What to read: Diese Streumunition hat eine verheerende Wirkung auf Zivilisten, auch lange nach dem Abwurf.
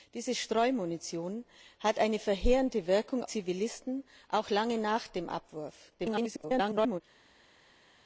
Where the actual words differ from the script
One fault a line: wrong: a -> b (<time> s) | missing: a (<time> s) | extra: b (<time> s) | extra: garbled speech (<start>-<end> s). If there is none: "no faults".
missing: auf (3.2 s)
extra: garbled speech (6.0-7.0 s)